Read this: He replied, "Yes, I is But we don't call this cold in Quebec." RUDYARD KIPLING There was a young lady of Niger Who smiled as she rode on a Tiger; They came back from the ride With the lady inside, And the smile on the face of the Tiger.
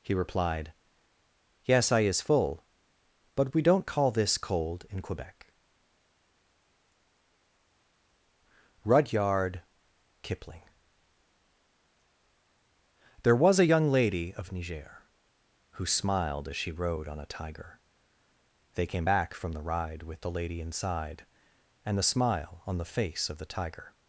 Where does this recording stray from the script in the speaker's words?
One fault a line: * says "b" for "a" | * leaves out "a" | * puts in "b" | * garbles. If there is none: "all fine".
* puts in "full"